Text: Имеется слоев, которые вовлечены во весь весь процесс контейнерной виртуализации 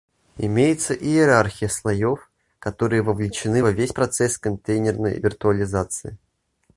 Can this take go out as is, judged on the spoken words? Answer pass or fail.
fail